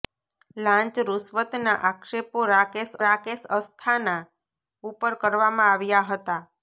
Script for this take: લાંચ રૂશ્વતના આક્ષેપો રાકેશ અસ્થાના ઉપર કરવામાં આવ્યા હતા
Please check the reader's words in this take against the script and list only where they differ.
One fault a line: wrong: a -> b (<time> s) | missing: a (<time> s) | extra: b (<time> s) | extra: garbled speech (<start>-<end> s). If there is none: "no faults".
extra: રાકેશ (3.1 s)